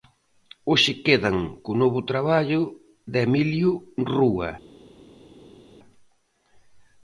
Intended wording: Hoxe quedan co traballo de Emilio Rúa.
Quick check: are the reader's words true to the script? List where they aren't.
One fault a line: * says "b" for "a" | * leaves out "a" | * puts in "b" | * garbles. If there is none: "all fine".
* puts in "novo"